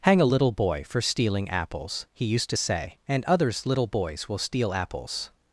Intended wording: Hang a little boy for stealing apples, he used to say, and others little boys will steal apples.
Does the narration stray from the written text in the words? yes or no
no